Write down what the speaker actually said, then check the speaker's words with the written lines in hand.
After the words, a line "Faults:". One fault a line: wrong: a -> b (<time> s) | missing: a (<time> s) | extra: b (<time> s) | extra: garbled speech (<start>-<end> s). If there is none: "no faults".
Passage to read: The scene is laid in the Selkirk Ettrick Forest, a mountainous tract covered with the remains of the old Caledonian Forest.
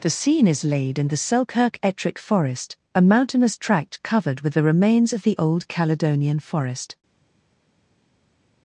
The scene is laid in the Selkirk Ettrick Forest, a mountainous tract covered with the remains of the old Caledonian Forest.
Faults:
no faults